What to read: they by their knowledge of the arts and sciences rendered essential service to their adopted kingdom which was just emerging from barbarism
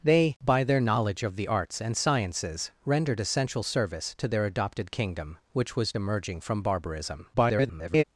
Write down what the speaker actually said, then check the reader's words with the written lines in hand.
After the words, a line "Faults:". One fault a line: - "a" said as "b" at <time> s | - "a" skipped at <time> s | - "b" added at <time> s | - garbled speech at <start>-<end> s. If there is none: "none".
they by their knowledge of the arts and sciences rendered essential service to their adopted kingdom which was emerging from barbarism [garbled]
Faults:
- "just" skipped at 5.9 s
- garbled speech at 7.3-8.0 s